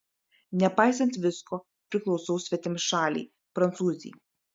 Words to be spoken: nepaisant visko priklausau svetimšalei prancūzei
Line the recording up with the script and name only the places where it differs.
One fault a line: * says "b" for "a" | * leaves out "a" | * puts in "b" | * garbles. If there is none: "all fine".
all fine